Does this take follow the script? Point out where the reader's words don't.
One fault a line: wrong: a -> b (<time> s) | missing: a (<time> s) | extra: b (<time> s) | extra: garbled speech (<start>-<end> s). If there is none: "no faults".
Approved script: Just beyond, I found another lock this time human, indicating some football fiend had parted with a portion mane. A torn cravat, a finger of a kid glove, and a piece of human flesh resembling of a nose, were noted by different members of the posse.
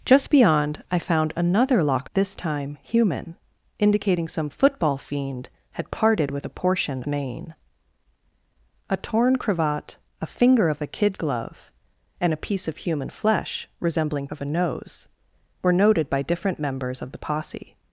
no faults